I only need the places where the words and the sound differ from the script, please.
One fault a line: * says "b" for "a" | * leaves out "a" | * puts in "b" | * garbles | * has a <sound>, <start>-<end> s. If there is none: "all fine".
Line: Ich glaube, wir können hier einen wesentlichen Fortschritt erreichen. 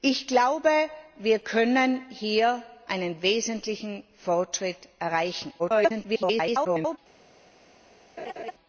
* garbles
* has a laugh, 8.2-8.5 s